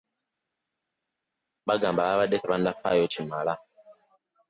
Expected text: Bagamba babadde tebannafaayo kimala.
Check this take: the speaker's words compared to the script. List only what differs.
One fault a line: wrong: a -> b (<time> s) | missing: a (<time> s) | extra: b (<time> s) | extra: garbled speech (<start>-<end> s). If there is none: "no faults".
no faults